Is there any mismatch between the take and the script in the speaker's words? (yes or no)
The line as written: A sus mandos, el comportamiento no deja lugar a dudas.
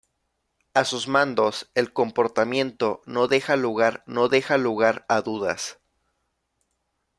yes